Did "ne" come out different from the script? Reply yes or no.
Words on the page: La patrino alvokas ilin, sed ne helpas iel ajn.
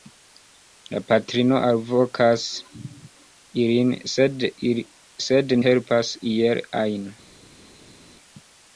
yes